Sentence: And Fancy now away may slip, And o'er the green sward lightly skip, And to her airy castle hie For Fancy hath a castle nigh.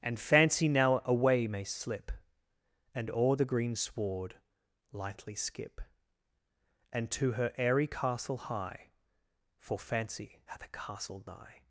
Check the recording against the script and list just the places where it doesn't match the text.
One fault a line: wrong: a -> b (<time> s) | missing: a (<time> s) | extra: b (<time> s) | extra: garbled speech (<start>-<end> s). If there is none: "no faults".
no faults